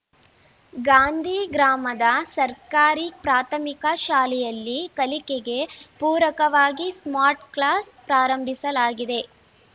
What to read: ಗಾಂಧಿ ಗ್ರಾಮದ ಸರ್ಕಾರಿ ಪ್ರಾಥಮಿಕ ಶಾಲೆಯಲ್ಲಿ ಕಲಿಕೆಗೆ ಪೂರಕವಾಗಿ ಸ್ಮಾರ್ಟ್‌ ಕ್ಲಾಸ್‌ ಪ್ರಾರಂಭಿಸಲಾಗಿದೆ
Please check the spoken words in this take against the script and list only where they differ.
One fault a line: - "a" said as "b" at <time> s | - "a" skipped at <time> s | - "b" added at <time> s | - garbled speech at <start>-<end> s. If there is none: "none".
none